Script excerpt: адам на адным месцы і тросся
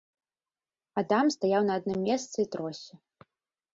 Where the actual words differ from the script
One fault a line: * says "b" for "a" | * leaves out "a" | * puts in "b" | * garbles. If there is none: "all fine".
* puts in "стаяў"